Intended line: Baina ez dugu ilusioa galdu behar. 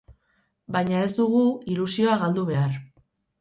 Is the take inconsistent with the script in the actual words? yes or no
no